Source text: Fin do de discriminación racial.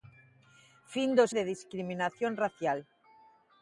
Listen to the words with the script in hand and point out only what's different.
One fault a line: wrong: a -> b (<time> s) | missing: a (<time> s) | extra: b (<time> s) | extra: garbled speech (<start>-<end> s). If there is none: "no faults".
no faults